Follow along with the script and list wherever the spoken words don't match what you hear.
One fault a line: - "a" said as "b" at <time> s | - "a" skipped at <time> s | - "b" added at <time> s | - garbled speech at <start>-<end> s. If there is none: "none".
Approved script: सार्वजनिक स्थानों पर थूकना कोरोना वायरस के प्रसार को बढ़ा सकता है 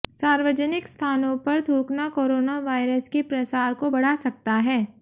none